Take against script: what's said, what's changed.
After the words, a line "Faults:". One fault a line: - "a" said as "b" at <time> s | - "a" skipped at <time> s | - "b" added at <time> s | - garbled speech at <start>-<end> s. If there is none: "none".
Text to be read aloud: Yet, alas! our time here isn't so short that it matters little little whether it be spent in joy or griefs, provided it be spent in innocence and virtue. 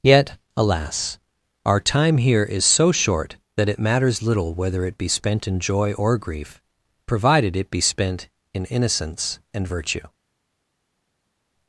Yet, alas! our time here is so short that it matters little whether it be spent in joy or grief, provided it be spent in innocence and virtue.
Faults:
- "isn't" said as "is" at 2.4 s
- "little" skipped at 4.5 s
- "griefs" said as "grief" at 6.2 s